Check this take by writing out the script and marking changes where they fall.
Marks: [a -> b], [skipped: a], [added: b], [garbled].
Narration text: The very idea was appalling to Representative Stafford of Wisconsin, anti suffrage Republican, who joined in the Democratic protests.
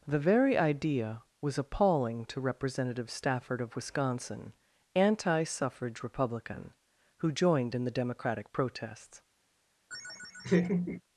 The very idea was appalling to Representative Stafford of Wisconsin, anti suffrage Republican, who joined in the Democratic protests.